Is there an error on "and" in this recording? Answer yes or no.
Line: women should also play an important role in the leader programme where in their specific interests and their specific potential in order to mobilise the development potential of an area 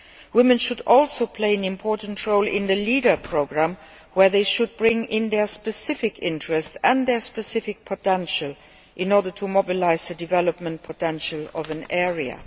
no